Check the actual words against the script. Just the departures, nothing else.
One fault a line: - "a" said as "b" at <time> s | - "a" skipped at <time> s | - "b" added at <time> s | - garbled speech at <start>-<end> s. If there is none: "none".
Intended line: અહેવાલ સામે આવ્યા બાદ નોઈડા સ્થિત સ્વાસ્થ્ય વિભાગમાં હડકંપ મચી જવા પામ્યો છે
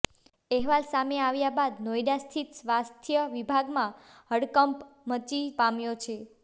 - "જવા" skipped at 5.4 s